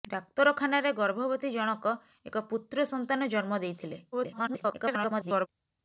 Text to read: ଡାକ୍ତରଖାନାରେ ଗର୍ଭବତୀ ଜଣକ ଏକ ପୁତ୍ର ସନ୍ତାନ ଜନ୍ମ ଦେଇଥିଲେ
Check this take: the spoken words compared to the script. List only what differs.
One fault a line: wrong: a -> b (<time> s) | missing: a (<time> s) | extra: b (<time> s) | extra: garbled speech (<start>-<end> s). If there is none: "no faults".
extra: garbled speech (4.1-5.5 s)